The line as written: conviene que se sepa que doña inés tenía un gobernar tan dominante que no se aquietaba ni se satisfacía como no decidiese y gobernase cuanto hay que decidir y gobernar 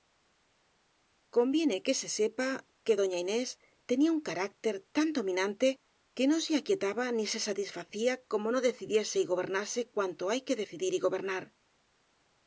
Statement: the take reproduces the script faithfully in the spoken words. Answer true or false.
false